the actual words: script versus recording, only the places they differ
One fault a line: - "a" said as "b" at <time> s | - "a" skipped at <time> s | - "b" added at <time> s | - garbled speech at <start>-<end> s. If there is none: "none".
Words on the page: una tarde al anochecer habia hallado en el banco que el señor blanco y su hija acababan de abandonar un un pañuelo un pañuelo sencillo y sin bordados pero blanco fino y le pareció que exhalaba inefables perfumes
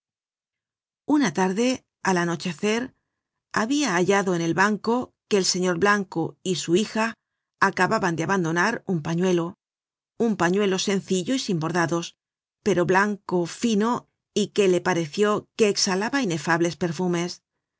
- "un" skipped at 9.0 s
- "que" added at 14.5 s